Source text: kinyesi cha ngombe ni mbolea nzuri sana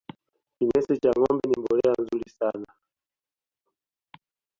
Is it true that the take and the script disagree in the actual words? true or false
false